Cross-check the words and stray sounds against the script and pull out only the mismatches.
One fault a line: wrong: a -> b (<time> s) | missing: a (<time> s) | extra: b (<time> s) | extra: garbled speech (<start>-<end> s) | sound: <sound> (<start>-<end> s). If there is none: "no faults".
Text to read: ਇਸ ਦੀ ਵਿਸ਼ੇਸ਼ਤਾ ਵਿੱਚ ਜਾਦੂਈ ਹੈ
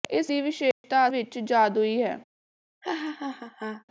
sound: dropout (0.7-0.8 s)
sound: laugh (2.8-3.8 s)